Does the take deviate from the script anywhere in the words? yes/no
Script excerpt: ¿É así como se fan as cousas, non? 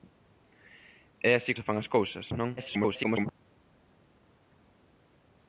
yes